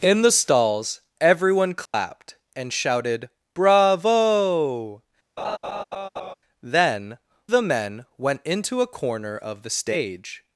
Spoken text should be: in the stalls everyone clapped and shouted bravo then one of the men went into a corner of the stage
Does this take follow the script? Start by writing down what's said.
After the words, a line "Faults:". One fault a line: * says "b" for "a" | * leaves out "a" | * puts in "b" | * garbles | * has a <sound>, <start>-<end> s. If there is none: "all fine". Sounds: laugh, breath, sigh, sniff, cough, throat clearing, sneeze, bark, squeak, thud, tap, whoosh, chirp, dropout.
in the stalls everyone clapped and shouted bravo then the men went into a corner of the stage
Faults:
* has a dropout, 1.9-1.9 s
* has a laugh, 5.4-6.3 s
* leaves out "one of"